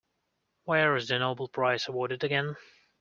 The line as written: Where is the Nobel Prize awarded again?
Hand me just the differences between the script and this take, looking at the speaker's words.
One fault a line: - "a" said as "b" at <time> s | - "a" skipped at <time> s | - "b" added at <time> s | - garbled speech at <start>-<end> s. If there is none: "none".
none